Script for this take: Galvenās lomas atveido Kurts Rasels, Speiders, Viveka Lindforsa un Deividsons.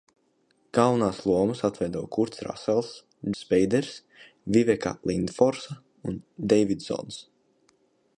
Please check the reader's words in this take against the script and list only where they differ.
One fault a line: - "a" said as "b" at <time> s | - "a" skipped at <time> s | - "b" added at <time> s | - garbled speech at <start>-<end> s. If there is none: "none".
none